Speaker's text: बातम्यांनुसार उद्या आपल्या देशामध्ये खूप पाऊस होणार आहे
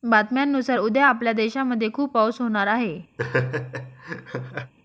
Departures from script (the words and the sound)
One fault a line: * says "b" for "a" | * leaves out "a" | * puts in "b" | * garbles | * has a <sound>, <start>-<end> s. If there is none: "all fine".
* has a laugh, 3.2-4.7 s